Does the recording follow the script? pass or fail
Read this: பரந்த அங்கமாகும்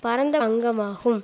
pass